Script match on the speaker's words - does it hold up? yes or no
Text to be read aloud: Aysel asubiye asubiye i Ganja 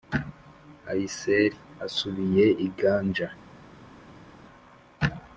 no